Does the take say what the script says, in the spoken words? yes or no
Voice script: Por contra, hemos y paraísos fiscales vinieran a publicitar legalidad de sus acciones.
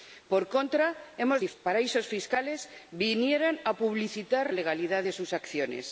yes